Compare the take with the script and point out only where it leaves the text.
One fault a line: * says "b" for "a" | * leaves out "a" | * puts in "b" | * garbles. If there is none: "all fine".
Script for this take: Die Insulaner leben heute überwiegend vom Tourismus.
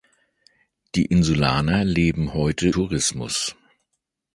* leaves out "überwiegend vom"